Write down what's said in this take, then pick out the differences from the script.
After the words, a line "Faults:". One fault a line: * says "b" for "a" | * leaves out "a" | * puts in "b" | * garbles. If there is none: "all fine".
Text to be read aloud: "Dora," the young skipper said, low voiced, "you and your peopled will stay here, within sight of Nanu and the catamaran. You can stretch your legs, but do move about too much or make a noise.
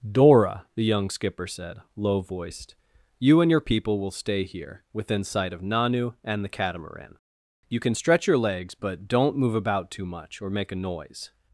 "Dora," the young skipper said, low voiced, "you and your people will stay here, within sight of Nanu and the catamaran. You can stretch your legs, but don't move about too much or make a noise.
Faults:
* says "people" for "peopled"
* says "don't" for "do"